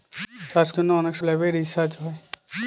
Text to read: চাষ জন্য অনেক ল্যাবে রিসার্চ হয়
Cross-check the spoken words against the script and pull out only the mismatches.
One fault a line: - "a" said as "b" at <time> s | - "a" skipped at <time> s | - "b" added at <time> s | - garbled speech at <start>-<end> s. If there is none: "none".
none